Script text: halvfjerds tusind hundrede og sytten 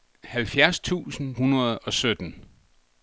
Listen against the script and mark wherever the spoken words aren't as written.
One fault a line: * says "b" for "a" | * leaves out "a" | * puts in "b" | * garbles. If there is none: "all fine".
all fine